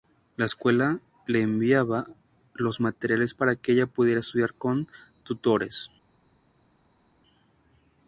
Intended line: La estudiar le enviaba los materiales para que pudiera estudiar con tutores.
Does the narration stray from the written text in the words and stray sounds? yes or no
yes